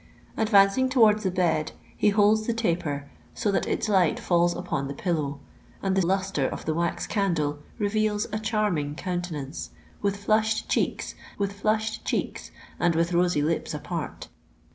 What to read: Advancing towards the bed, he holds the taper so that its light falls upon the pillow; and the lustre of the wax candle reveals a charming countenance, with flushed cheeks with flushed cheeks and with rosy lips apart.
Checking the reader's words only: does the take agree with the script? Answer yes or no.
yes